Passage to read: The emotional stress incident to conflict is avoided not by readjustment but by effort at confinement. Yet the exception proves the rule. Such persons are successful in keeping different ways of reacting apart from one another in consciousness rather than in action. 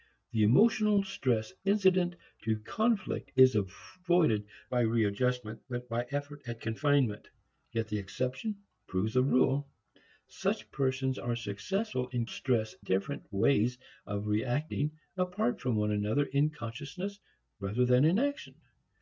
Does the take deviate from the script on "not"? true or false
true